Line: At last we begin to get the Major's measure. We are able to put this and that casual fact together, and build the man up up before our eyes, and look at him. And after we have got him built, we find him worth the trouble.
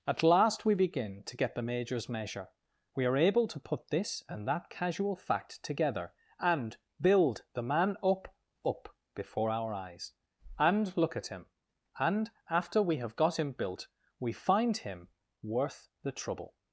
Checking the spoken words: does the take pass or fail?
pass